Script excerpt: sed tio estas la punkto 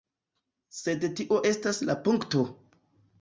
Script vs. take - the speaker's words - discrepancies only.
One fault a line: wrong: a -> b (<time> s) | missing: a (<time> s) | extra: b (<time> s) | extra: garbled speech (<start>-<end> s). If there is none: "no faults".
no faults